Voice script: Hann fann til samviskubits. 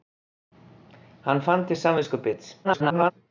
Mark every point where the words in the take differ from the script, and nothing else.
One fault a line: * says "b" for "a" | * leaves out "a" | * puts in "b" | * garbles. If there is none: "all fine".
* garbles